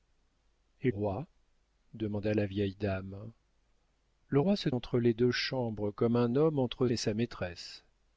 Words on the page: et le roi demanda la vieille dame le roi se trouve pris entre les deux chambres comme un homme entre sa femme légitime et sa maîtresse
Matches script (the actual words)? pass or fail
fail